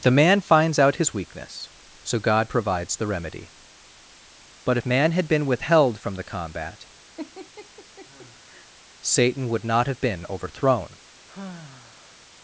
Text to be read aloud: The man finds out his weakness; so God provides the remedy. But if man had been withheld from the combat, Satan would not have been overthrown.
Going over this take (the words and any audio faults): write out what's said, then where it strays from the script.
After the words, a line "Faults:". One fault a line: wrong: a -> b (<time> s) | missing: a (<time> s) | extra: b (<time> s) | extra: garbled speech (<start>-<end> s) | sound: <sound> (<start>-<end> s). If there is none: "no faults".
The man finds out his weakness; so God provides the remedy. But if man had been withheld from the combat, Satan would not have been overthrown.
Faults:
sound: laugh (7.2-8.7 s)
sound: sigh (11.3-12.3 s)